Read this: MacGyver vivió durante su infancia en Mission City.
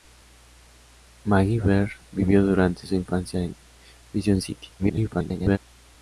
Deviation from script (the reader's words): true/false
true